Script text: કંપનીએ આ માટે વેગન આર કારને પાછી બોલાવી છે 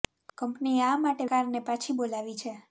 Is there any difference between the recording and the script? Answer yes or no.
yes